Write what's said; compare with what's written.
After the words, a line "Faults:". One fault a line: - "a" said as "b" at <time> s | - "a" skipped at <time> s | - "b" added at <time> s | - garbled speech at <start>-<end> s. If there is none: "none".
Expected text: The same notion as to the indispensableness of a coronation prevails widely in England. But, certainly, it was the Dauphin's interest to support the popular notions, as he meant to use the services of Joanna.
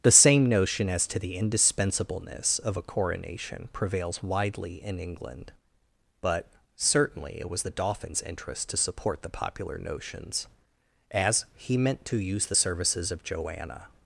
The same notion as to the indispensableness of a coronation prevails widely in England. But, certainly, it was the Dauphin's interest to support the popular notions, as he meant to use the services of Joanna.
Faults:
none